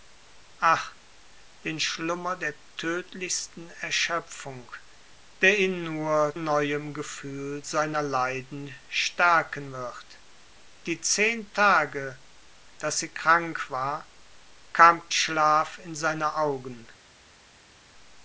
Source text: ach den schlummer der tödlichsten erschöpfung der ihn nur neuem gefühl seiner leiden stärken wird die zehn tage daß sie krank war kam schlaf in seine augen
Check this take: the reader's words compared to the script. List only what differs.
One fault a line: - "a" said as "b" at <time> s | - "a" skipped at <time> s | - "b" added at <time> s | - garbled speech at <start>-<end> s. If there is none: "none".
none